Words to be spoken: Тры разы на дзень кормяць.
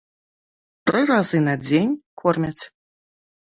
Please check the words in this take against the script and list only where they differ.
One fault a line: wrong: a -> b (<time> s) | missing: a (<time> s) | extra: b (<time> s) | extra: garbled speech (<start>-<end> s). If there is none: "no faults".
no faults